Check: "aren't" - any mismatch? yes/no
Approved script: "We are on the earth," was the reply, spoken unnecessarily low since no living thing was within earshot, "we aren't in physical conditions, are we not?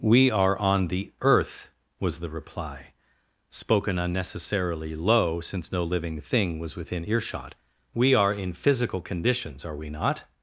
yes